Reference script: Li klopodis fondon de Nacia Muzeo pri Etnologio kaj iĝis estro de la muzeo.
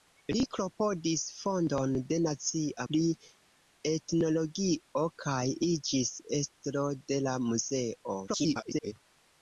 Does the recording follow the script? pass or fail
fail